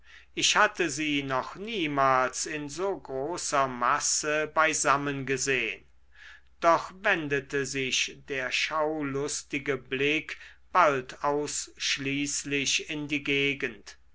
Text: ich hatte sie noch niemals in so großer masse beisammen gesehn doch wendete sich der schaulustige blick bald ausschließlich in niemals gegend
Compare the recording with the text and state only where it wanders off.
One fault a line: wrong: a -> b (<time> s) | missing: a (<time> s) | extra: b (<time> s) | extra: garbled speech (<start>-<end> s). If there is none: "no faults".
wrong: niemals -> die (13.1 s)